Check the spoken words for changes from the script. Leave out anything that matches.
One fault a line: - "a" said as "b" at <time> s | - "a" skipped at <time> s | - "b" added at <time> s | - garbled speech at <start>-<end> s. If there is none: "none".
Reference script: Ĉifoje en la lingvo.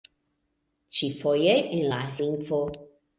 none